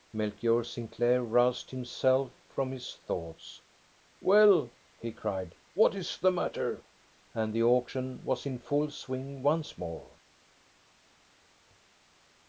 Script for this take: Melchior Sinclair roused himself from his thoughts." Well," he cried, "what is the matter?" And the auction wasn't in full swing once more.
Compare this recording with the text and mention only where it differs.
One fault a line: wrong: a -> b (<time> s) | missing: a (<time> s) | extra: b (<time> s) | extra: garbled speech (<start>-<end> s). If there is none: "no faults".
wrong: wasn't -> was (8.2 s)